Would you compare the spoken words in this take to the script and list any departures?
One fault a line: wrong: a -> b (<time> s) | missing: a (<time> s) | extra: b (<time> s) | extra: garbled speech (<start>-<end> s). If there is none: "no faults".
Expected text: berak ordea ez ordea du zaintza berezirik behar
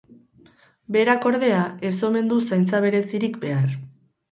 wrong: ordea -> omen (2.1 s)